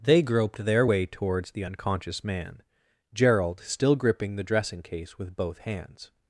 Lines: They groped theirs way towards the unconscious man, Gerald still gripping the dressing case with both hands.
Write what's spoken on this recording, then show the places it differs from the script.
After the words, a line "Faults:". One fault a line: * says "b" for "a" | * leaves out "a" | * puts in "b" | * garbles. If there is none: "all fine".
They groped their way towards the unconscious man, Gerald still gripping the dressing case with both hands.
Faults:
* says "their" for "theirs"